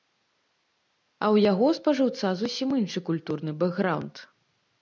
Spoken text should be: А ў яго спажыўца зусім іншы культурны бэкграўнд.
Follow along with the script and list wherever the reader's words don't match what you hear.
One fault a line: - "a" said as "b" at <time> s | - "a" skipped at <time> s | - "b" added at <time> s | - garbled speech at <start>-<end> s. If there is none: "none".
none